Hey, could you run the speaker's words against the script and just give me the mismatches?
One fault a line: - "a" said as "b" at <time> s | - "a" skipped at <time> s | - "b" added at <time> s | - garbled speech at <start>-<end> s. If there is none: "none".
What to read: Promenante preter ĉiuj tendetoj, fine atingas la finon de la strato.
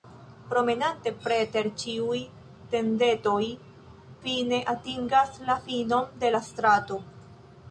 none